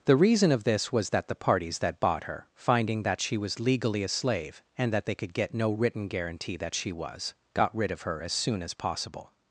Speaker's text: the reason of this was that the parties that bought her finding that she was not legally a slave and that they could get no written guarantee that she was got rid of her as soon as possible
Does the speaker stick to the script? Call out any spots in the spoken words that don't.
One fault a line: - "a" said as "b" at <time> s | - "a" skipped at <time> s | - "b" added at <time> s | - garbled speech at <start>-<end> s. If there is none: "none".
- "not" skipped at 3.6 s